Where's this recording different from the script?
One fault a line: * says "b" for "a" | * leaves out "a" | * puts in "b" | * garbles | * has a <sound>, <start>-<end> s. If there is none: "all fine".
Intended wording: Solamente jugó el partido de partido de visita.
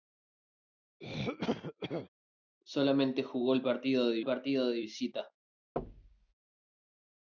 * has a throat clearing, 1.0-2.1 s
* has a thud, 5.8-6.3 s